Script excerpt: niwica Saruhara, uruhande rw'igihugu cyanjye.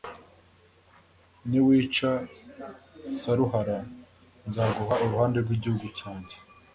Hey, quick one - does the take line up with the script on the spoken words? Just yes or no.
no